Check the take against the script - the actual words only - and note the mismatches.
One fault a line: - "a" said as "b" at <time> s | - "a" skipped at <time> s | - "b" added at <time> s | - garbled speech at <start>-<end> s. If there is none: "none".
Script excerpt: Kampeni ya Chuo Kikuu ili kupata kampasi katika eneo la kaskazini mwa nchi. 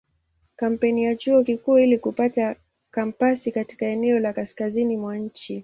none